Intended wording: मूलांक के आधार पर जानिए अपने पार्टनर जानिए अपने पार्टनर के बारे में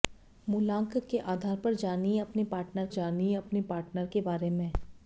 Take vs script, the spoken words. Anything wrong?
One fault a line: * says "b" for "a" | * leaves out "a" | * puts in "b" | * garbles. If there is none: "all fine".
all fine